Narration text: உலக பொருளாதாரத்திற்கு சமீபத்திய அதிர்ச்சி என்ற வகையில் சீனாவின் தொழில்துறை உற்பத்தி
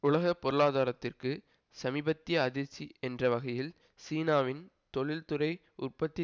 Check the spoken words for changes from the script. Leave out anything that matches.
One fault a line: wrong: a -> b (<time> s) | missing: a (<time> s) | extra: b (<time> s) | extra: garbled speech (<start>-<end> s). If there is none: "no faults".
no faults